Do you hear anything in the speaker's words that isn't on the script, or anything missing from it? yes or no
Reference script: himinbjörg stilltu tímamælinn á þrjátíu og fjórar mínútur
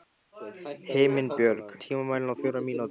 yes